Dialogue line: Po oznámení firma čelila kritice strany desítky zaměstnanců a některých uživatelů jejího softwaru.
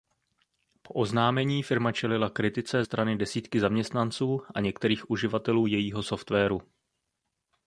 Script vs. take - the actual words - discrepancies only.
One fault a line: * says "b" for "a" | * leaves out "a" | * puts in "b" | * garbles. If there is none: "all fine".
all fine